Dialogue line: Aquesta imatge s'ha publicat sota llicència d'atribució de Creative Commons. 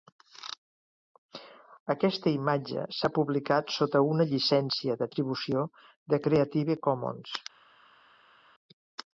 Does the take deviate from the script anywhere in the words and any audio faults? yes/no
yes